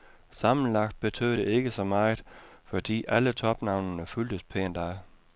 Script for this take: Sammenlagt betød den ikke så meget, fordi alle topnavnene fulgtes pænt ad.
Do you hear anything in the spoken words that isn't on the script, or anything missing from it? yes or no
yes